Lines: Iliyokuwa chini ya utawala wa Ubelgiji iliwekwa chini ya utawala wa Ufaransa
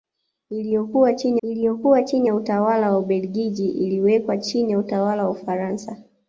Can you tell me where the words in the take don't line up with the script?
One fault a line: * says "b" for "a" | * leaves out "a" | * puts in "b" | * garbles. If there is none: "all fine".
* puts in "iliyokuwa chini"